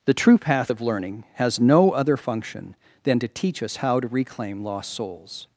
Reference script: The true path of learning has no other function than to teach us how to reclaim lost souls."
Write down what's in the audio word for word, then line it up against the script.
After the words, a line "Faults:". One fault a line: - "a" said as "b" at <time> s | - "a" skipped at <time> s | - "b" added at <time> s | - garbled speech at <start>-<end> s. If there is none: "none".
The true path of learning has no other function than to teach us how to reclaim lost souls."
Faults:
none